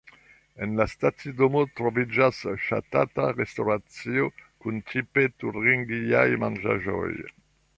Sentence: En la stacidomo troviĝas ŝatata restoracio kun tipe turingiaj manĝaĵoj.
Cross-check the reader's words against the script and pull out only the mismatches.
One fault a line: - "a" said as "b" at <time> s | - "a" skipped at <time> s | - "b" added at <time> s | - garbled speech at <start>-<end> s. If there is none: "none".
none